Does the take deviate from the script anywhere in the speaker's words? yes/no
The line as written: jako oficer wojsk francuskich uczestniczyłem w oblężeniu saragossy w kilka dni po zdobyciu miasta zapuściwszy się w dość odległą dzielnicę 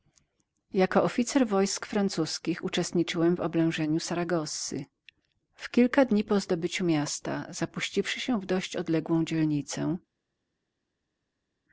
no